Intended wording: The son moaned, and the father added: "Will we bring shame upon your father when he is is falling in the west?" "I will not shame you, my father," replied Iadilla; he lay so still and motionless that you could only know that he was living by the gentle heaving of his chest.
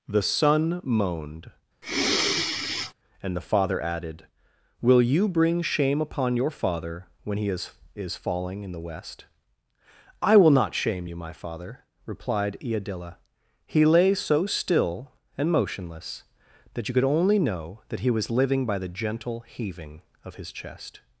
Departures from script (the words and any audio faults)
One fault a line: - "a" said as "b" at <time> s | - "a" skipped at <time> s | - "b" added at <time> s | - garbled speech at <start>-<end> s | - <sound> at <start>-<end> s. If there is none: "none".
- sigh at 1.8-2.9 s
- "we" said as "you" at 5.0 s